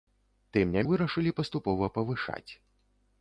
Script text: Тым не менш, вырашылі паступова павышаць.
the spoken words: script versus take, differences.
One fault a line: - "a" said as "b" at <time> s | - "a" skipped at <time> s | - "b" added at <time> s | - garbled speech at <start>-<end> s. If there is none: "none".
- "менш" skipped at 0.8 s